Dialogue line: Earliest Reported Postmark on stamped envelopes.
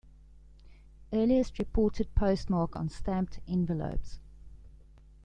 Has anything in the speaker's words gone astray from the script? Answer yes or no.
no